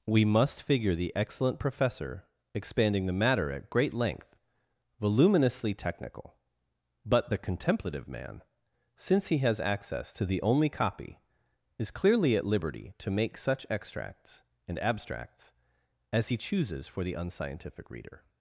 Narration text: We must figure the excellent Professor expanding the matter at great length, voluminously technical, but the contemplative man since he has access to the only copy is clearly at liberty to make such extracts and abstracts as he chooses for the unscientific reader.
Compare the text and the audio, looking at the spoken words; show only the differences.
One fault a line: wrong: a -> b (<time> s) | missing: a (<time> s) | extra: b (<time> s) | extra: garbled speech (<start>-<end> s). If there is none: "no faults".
no faults